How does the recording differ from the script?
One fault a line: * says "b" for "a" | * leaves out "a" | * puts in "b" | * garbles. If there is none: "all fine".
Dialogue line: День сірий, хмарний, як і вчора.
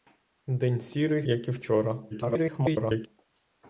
* leaves out "хмарний"
* garbles